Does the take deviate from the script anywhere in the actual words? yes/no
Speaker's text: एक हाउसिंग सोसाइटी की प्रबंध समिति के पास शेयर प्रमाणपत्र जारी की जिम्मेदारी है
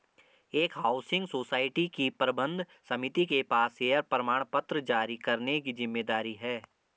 yes